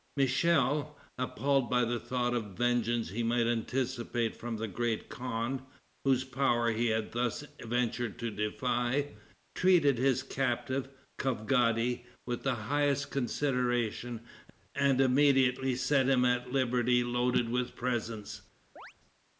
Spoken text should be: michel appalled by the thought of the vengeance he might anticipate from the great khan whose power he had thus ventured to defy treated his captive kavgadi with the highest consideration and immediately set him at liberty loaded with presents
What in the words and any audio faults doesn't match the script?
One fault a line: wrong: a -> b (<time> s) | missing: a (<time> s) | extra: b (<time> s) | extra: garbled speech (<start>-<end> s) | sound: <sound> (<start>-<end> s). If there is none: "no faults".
sound: chirp (18.8-18.9 s)